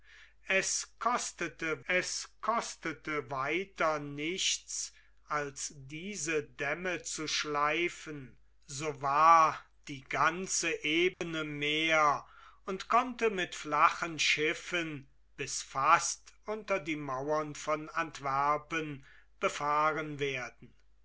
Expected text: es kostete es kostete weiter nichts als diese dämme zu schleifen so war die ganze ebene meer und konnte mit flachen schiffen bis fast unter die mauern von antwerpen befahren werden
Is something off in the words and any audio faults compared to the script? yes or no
yes